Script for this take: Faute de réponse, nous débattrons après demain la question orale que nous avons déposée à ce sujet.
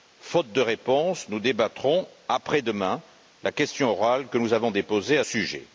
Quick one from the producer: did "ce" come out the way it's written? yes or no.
no